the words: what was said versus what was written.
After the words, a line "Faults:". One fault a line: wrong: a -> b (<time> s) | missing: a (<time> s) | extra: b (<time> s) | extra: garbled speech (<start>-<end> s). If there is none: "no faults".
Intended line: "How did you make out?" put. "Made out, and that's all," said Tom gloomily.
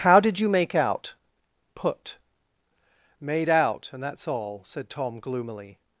"How did you make out?" put. "Made out, and that's all," said Tom gloomily.
Faults:
no faults